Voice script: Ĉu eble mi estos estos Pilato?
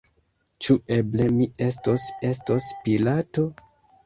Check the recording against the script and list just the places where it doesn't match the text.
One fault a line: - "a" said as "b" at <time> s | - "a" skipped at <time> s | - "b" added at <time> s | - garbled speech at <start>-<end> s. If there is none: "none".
none